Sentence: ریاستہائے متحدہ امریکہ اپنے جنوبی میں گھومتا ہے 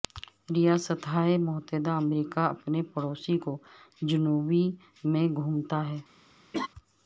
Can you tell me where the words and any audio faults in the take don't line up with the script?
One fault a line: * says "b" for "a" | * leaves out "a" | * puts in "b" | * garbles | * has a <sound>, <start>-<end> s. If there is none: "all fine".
* puts in "پڑوسی کو"
* has a laugh, 6.5-6.7 s